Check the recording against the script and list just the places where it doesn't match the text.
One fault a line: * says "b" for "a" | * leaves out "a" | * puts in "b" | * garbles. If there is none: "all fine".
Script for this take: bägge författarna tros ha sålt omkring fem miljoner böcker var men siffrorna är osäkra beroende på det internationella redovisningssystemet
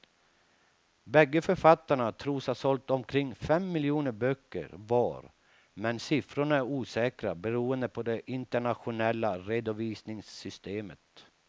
all fine